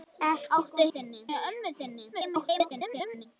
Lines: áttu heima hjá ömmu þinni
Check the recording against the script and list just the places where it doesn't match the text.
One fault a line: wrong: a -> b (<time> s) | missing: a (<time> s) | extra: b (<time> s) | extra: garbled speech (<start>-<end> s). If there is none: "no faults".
wrong: heima -> þinni (0.9 s)
extra: garbled speech (2.1-3.3 s)